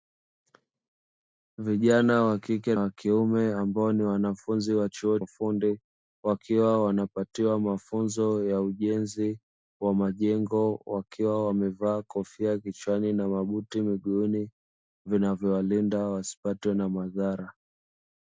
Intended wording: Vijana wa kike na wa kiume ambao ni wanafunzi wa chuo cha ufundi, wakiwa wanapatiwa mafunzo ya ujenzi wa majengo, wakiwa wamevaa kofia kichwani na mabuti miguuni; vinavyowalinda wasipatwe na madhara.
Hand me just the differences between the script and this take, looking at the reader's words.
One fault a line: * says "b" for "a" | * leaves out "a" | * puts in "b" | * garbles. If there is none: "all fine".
* leaves out "na"
* leaves out "cha"